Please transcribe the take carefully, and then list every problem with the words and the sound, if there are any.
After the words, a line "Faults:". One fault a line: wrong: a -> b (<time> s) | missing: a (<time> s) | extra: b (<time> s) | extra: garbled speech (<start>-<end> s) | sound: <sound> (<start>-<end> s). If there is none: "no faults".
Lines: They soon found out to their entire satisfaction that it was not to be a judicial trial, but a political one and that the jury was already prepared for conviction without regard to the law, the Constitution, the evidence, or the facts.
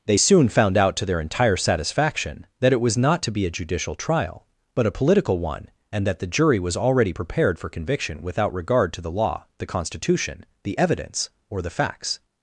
They soon found out to their entire satisfaction that it was not to be a judicial trial, but a political one and that the jury was already prepared for conviction without regard to the law, the Constitution, the evidence, or the facts.
Faults:
no faults